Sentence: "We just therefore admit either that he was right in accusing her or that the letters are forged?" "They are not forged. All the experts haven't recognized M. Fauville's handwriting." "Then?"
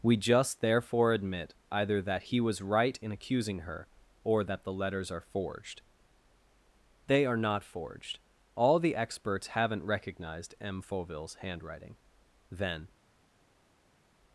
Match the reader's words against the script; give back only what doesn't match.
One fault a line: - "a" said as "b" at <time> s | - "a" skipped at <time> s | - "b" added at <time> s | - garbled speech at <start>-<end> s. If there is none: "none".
none